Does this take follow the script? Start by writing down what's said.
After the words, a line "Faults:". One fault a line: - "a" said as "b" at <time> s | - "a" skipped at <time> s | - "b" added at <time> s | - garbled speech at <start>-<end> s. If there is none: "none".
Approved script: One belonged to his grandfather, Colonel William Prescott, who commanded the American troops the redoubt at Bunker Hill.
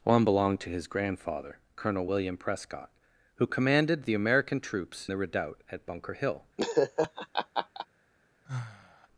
One belonged to his grandfather, Colonel William Prescott, who commanded the American troops the redoubt at Bunker Hill.
Faults:
none